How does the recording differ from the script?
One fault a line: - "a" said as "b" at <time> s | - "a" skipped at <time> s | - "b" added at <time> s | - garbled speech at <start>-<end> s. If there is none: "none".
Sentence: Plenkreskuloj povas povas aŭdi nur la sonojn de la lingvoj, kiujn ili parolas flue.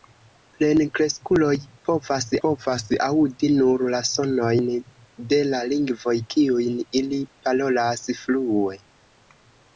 none